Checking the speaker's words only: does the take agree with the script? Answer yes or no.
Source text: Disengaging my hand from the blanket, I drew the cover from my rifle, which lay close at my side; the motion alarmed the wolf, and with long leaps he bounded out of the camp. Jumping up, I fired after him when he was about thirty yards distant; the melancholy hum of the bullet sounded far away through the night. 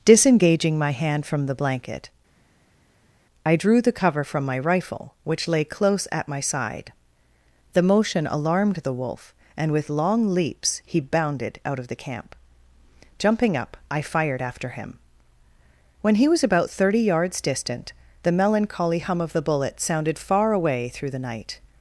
yes